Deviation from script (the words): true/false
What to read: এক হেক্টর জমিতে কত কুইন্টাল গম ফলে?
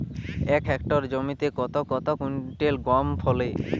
true